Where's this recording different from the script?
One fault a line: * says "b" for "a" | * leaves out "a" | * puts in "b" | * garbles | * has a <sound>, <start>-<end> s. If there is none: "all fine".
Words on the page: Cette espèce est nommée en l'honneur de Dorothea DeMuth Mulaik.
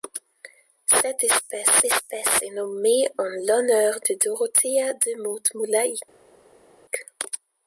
* puts in "espèce"